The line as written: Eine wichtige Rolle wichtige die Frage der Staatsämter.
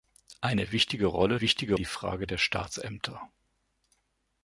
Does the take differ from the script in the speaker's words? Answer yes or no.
no